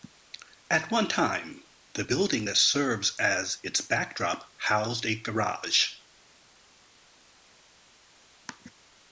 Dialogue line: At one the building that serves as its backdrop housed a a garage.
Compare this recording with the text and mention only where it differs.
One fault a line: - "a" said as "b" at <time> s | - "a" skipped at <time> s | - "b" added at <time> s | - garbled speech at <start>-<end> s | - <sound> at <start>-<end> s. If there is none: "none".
- "time" added at 1.1 s
- "a" skipped at 5.2 s